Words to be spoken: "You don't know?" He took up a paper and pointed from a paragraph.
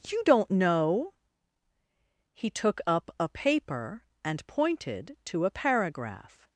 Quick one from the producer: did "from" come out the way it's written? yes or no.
no